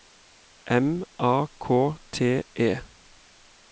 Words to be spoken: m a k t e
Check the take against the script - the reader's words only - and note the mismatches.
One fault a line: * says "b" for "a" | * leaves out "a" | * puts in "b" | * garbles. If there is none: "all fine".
all fine